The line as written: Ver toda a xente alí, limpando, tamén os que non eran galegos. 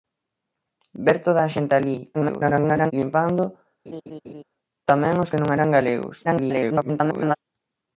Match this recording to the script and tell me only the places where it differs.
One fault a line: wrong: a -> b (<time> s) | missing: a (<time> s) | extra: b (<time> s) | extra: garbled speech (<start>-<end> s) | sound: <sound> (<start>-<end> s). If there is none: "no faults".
extra: garbled speech (2.1-2.9 s)
sound: laugh (3.9-4.4 s)
extra: garbled speech (6.2-7.4 s)